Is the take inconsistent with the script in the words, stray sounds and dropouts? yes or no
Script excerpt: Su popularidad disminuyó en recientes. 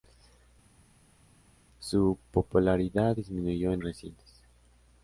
no